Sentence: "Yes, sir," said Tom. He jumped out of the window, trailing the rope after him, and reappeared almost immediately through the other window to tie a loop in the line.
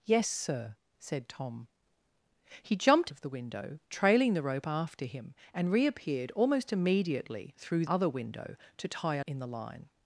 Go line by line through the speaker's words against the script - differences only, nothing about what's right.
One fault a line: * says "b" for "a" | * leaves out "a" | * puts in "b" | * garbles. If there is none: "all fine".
* leaves out "out"
* leaves out "the"
* leaves out "loop"